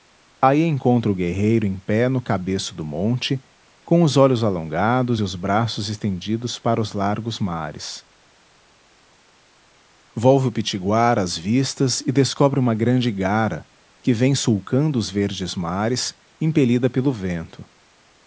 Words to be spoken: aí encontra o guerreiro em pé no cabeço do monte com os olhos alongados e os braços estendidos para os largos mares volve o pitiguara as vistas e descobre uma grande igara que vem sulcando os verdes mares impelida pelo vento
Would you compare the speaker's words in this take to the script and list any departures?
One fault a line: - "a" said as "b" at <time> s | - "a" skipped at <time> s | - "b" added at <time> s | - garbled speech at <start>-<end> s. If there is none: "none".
none